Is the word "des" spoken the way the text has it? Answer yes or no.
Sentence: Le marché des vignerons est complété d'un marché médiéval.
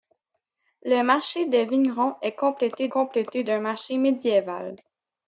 yes